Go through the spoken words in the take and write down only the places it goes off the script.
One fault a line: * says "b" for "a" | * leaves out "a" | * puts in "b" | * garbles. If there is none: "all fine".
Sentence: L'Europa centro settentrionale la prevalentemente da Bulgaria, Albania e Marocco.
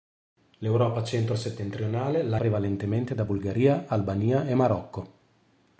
all fine